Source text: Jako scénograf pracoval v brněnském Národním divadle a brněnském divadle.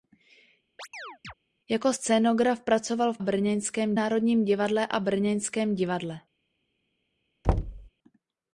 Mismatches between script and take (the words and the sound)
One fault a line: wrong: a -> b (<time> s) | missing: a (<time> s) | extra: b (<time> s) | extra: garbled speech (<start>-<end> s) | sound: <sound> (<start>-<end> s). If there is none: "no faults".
sound: chirp (0.8-1.3 s)
sound: thud (7.4-7.9 s)